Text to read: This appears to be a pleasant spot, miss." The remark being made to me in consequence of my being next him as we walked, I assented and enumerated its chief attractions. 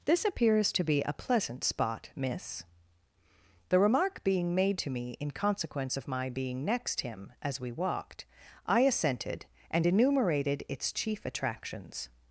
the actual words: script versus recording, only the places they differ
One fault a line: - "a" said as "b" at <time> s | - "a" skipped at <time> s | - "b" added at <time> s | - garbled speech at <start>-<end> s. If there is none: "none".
none